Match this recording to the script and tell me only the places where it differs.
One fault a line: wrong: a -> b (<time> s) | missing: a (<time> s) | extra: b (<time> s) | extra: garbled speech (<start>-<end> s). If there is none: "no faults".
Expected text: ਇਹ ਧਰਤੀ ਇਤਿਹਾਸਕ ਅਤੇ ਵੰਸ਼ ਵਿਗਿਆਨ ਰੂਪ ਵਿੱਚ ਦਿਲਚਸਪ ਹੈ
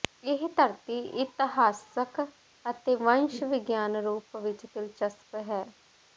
no faults